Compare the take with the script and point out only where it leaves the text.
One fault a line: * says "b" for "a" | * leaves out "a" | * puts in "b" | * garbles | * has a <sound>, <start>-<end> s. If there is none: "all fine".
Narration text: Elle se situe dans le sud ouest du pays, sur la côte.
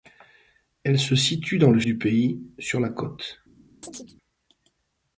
* leaves out "sud ouest"
* has a chirp, 3.8-4.1 s